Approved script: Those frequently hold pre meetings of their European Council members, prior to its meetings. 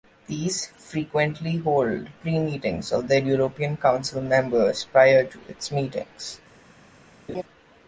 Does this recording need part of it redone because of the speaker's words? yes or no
yes